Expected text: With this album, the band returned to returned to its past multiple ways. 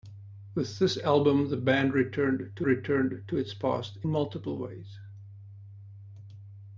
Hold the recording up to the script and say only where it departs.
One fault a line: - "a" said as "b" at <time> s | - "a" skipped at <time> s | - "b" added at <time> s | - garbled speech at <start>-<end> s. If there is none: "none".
none